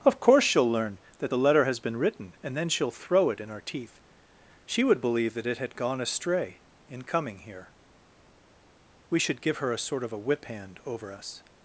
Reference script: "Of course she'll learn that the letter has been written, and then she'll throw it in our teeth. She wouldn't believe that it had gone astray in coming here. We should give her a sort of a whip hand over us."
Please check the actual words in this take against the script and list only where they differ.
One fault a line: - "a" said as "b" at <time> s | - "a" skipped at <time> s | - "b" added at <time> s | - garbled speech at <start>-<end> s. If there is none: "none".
- "wouldn't" said as "would" at 4.8 s